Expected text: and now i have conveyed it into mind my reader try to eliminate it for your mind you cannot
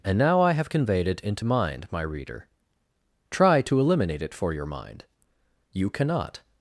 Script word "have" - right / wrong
right